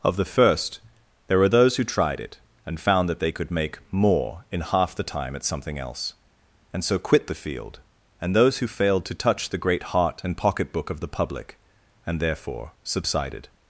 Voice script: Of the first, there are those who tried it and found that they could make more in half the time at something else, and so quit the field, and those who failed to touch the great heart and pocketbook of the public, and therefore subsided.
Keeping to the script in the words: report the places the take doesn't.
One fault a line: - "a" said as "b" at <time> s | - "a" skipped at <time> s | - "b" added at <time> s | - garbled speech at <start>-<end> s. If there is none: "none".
- "are" said as "were" at 1.4 s